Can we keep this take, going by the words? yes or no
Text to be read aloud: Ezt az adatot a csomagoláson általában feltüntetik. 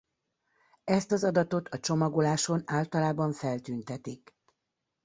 yes